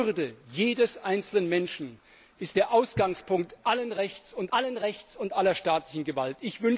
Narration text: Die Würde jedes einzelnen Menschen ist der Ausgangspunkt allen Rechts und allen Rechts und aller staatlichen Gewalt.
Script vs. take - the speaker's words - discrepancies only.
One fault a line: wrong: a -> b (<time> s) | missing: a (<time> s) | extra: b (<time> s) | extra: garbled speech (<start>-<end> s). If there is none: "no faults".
no faults